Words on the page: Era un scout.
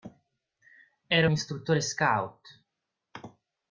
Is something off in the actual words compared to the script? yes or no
yes